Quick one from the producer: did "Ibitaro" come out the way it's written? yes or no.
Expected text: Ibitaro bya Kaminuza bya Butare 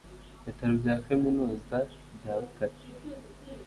yes